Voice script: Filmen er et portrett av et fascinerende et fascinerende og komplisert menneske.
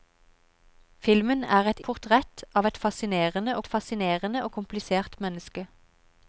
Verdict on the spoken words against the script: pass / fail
pass